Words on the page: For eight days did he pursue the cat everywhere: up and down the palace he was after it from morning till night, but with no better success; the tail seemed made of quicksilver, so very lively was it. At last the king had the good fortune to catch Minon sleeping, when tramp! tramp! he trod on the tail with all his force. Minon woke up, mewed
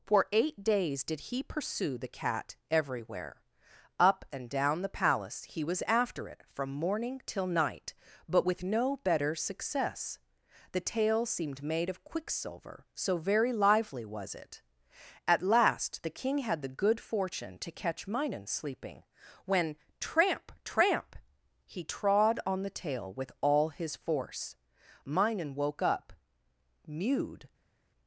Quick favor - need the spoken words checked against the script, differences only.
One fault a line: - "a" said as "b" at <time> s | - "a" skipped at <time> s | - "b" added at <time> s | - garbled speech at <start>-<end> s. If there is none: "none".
none